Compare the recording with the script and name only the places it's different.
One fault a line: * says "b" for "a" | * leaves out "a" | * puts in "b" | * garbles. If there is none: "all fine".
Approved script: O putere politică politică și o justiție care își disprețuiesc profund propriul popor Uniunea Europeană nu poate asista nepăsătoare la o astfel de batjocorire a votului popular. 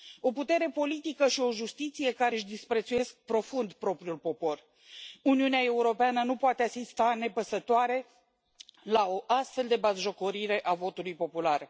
* leaves out "politică"